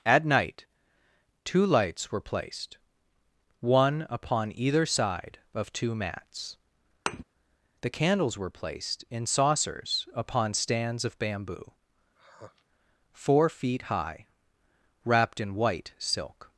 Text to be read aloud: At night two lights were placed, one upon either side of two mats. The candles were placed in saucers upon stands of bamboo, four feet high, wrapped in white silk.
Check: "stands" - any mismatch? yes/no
no